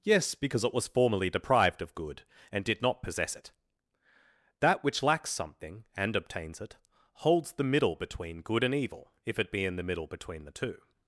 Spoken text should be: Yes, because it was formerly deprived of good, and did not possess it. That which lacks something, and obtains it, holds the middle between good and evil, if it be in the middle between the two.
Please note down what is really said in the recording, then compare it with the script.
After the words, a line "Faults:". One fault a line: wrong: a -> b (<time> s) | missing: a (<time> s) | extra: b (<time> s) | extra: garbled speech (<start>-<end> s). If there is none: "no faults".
Yes, because it was formerly deprived of good, and did not possess it. That which lacks something, and obtains it, holds the middle between good and evil, if it be in the middle between the two.
Faults:
no faults